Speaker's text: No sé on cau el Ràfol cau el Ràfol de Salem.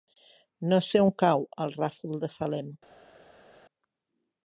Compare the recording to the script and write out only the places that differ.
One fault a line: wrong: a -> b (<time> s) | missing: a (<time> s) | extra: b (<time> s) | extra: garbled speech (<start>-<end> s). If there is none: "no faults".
missing: cau el Ràfol (2.2 s)